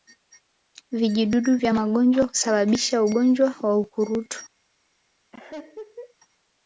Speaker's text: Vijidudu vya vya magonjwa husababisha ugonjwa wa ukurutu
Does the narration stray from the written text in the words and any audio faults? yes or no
yes